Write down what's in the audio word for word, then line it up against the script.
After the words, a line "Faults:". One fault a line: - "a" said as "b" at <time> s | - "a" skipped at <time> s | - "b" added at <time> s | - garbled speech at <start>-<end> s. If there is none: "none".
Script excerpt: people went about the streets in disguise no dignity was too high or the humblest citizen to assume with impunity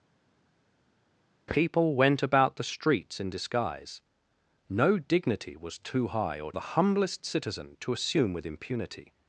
people went about the streets in disguise no dignity was too high or the humblest citizen to assume with impunity
Faults:
none